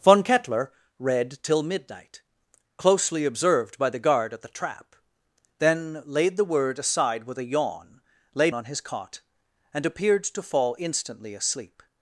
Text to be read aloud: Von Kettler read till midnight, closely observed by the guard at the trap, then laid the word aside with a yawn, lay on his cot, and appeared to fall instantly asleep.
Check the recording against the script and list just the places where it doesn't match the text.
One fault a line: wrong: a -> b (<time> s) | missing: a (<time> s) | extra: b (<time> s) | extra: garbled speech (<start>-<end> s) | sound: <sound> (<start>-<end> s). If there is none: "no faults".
no faults